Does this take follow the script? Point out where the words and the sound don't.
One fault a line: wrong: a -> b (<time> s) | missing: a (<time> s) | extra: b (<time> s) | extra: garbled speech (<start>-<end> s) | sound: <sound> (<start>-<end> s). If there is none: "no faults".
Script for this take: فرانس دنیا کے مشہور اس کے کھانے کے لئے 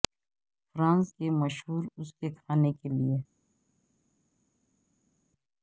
missing: دنیا (1.1 s)